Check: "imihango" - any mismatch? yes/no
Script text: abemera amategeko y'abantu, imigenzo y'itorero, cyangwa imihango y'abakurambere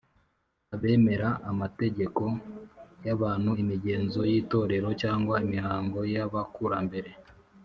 no